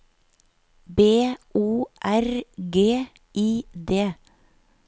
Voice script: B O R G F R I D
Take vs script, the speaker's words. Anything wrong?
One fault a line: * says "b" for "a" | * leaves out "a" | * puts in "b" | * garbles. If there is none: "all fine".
* leaves out "F R"